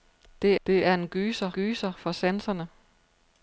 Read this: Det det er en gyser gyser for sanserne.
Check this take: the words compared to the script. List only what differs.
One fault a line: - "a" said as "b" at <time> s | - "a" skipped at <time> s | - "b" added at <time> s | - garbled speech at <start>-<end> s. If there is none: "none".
none